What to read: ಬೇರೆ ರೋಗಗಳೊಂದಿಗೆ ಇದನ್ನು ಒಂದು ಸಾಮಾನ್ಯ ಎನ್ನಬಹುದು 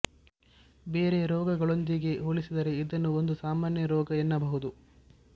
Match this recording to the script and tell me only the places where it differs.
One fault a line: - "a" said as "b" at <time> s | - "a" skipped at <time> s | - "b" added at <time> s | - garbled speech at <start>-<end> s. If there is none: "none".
- "ಹೋಲಿಸಿದರೆ" added at 2.2 s
- "ರೋಗ" added at 3.9 s